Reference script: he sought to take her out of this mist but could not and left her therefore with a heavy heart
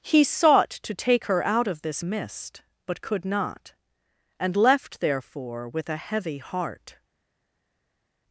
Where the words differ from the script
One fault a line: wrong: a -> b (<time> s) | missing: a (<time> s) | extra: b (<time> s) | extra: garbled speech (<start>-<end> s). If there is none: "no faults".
missing: her (5.0 s)